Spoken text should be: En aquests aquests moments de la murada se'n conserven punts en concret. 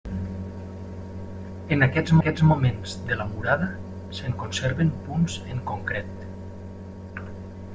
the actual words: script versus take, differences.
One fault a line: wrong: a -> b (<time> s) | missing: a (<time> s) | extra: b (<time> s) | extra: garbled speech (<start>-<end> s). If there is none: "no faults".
no faults